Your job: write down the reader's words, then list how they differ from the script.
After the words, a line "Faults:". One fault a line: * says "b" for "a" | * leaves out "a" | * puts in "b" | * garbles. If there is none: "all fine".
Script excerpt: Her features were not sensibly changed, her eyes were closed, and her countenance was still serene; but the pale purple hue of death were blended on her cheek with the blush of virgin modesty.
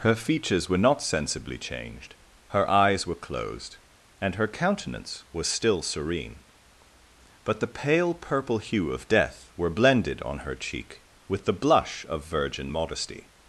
Her features were not sensibly changed, her eyes were closed, and her countenance was still serene; but the pale purple hue of death were blended on her cheek with the blush of virgin modesty.
Faults:
all fine